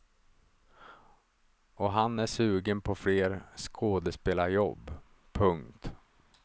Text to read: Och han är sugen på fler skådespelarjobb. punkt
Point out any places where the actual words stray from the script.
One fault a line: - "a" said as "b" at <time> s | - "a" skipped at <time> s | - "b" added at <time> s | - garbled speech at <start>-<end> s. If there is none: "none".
none